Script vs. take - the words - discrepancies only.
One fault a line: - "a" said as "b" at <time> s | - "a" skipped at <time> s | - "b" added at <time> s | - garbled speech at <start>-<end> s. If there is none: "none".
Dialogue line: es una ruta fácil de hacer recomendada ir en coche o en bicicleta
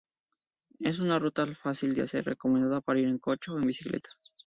- "para" added at 2.8 s